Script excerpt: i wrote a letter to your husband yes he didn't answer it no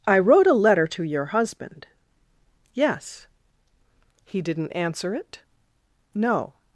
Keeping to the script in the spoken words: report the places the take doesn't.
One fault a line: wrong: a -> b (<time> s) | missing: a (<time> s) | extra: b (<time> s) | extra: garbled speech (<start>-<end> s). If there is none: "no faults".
no faults